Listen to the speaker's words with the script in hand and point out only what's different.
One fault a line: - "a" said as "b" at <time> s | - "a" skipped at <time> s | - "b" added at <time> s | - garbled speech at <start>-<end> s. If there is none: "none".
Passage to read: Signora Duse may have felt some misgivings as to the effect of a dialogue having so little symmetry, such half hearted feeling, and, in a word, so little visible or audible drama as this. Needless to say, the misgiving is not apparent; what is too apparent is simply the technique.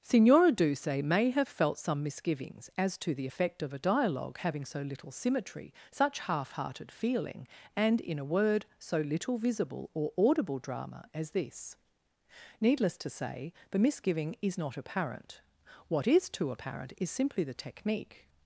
none